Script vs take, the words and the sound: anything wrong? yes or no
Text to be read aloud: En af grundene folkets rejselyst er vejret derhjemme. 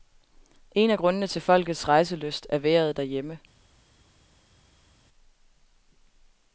yes